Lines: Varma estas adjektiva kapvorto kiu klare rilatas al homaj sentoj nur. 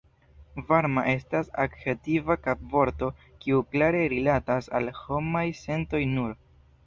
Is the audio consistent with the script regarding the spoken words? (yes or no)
yes